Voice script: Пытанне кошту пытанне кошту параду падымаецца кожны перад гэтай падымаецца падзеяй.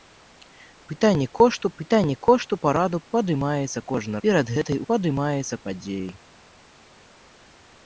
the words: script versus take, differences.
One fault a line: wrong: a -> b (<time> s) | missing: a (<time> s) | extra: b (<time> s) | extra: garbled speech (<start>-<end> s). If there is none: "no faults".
no faults